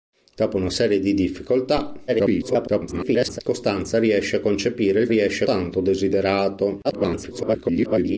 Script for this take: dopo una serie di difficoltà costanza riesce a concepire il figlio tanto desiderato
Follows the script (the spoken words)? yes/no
no